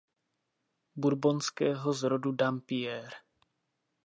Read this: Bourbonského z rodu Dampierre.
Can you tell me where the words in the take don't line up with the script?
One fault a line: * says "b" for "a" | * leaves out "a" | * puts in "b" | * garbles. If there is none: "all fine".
all fine